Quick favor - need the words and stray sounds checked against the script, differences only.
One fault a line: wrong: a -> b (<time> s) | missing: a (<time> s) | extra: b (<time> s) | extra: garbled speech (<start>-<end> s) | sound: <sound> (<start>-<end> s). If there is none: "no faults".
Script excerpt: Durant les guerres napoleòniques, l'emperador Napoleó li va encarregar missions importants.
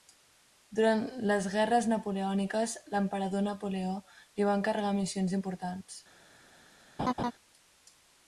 sound: laugh (7.0-7.3 s)